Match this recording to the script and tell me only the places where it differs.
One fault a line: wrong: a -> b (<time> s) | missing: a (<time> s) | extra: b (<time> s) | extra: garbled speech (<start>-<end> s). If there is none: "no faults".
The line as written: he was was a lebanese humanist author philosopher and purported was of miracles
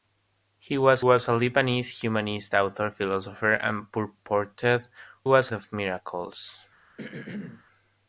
no faults